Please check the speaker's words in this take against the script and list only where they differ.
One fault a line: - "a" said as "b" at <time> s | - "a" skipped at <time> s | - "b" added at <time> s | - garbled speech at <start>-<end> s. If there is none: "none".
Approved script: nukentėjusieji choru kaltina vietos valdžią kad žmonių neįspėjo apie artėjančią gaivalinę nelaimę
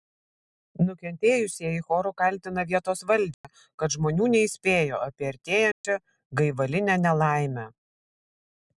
none